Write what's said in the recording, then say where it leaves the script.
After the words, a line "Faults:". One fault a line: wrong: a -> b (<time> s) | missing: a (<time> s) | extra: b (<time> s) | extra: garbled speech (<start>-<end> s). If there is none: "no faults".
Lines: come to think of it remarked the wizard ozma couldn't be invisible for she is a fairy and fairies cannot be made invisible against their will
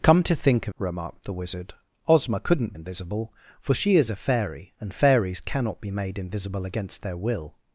come to think of remarked the wizard ozma couldn't invisible for she is a fairy and fairies cannot be made invisible against their will
Faults:
missing: it (0.7 s)
missing: be (2.7 s)